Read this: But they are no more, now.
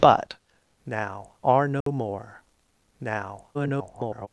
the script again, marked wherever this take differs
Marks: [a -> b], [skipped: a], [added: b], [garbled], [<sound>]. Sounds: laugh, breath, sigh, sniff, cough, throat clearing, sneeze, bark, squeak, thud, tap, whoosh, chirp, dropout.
But [they -> now] are no [dropout] more, now. [garbled]